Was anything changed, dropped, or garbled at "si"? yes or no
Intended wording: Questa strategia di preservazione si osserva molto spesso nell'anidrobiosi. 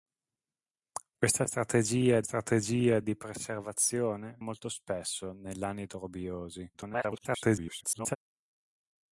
yes